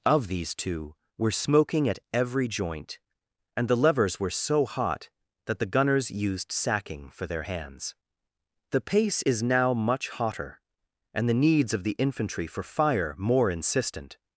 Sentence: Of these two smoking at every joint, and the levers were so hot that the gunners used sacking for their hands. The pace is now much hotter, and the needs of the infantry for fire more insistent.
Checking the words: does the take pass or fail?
fail